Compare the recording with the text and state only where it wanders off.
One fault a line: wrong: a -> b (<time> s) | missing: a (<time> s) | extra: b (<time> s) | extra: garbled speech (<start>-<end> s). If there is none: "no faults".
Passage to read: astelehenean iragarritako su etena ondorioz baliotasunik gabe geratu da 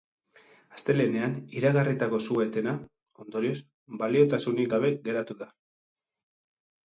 no faults